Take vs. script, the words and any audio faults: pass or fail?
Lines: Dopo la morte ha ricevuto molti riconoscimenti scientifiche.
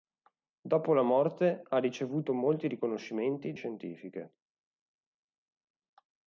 pass